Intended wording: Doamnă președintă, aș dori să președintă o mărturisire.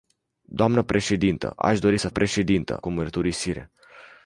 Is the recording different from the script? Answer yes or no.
no